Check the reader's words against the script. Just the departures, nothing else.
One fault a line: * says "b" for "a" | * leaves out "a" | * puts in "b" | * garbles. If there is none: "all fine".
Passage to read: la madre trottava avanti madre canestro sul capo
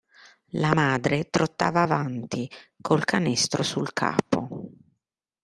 * says "col" for "madre"